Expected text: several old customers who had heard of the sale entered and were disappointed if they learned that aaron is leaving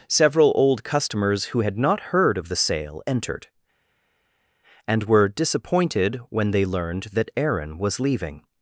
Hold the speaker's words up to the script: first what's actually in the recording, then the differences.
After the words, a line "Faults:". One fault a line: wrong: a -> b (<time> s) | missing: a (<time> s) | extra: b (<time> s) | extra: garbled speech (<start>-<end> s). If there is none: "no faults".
several old customers who had not heard of the sale entered and were disappointed when they learned that aaron was leaving
Faults:
extra: not (1.8 s)
wrong: if -> when (6.3 s)
wrong: is -> was (7.8 s)